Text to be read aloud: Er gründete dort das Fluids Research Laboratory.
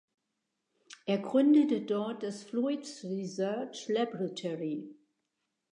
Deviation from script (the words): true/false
false